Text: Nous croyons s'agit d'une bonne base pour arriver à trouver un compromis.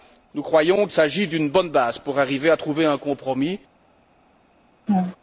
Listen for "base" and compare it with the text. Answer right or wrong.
right